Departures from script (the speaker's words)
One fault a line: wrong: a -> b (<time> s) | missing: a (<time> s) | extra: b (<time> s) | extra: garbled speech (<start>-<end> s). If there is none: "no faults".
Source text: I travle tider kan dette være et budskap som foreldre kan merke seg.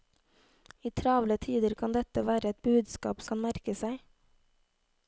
missing: som foreldre (3.2 s)